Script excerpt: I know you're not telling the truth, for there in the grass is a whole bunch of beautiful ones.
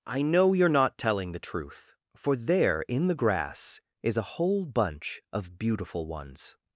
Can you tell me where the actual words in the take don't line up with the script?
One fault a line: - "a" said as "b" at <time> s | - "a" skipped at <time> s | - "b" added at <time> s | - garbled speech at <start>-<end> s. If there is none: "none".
none